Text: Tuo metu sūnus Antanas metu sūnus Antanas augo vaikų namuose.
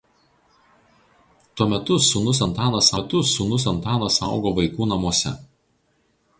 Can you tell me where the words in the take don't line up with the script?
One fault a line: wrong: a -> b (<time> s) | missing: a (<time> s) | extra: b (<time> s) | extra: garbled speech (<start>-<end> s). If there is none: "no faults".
no faults